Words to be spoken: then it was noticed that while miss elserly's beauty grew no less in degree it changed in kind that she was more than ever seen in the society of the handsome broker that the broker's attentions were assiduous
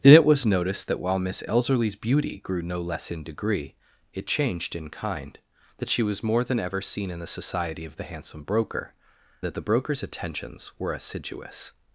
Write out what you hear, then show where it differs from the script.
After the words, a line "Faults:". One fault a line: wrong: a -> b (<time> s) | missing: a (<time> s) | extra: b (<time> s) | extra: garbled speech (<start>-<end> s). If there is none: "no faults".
then it was noticed that while miss elserly's beauty grew no less in degree it changed in kind that she was more than ever seen in the society of the handsome broker that the broker's attentions were assiduous
Faults:
no faults